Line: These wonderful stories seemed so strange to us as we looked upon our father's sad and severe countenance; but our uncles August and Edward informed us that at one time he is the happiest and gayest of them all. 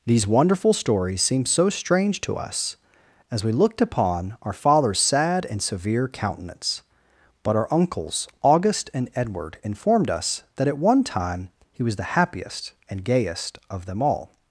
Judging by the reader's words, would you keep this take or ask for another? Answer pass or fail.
fail